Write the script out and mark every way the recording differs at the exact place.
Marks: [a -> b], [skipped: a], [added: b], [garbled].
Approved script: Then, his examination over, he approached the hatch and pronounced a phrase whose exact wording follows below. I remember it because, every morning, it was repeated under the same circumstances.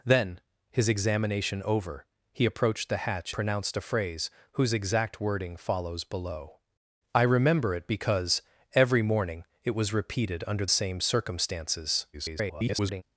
Then, his examination over, he approached the hatch [skipped: and] pronounced a phrase whose exact wording follows below. I remember it because, every morning, it was repeated under [skipped: the] same circumstances. [garbled]